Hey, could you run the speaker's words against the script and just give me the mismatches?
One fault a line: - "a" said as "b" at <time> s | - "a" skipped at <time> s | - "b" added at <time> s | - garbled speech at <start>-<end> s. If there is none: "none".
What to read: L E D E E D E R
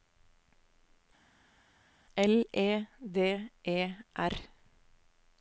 - "E D E" skipped at 3.8 s